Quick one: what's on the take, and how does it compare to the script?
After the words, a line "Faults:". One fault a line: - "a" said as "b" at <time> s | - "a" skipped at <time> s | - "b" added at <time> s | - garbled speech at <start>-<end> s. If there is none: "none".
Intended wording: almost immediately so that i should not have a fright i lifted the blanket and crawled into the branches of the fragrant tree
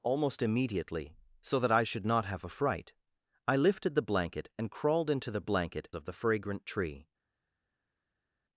almost immediately so that i should not have a fright i lifted the blanket and crawled into the blanket of the fragrant tree
Faults:
- "branches" said as "blanket" at 5.4 s